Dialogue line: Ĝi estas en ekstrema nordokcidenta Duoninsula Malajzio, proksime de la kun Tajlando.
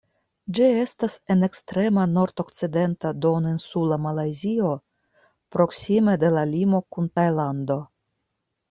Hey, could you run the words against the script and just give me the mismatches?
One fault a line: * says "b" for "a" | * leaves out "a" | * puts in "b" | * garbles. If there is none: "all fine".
* puts in "limo"